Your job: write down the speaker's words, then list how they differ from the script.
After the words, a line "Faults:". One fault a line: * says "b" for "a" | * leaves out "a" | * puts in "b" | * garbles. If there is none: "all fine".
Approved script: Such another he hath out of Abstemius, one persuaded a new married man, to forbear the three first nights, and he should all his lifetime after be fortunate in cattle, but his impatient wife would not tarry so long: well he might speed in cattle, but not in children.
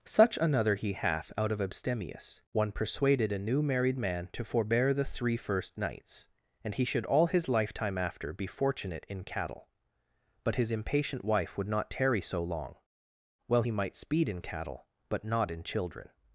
Such another he hath out of Abstemius, one persuaded a new married man, to forbear the three first nights, and he should all his lifetime after be fortunate in cattle, but his impatient wife would not tarry so long: well he might speed in cattle, but not in children.
Faults:
all fine